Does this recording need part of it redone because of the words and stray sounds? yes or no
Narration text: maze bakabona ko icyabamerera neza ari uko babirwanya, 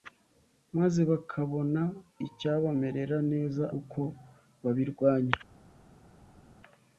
yes